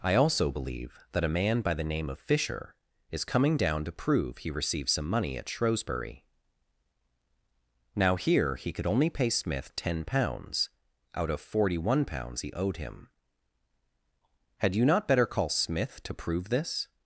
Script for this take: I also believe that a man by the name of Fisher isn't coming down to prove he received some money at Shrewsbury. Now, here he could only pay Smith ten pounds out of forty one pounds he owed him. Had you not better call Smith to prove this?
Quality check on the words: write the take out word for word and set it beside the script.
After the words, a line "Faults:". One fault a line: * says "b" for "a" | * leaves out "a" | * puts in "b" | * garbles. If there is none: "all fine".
I also believe that a man by the name of Fisher is coming down to prove he received some money at Shrewsbury. Now, here he could only pay Smith ten pounds out of forty one pounds he owed him. Had you not better call Smith to prove this?
Faults:
* says "is" for "isn't"